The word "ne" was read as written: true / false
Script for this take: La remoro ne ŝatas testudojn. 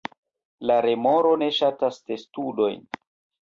true